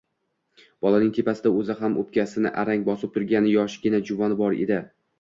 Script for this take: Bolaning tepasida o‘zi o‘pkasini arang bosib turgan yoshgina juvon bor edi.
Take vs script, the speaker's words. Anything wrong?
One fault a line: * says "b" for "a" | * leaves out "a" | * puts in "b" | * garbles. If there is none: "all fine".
* puts in "ham"